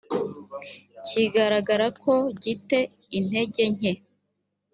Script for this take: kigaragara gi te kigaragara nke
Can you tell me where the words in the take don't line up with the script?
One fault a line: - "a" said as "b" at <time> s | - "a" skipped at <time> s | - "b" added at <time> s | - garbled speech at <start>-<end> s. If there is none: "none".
- "ko" added at 2.0 s
- "kigaragara" said as "intege" at 3.2 s